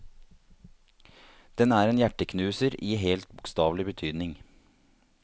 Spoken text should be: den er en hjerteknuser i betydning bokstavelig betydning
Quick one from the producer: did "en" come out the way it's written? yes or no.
yes